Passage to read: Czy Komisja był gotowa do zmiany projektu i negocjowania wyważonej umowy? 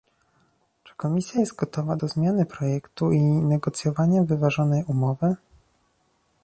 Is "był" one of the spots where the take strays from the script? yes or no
yes